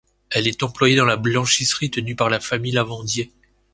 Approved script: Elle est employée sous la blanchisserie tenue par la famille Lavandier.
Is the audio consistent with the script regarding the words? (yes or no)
no